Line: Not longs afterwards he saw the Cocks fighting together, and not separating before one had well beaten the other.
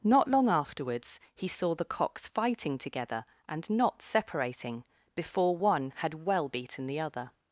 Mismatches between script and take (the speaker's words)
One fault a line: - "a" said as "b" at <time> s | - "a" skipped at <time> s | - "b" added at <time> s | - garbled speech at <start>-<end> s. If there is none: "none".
- "longs" said as "long" at 0.3 s